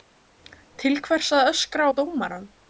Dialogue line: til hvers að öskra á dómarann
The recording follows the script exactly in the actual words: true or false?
true